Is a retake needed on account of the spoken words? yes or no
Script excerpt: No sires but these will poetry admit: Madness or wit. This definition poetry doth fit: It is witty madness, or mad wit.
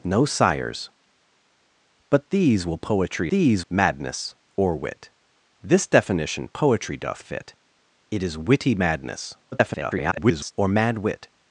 yes